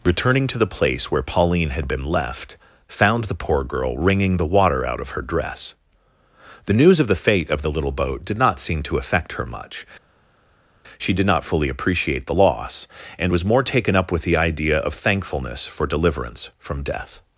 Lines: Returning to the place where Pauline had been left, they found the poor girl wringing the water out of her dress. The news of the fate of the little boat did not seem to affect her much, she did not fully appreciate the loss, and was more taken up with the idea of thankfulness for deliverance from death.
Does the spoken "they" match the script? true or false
false